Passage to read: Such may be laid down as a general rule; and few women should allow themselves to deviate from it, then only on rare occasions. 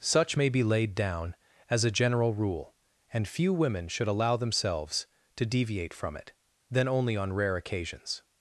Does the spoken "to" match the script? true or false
true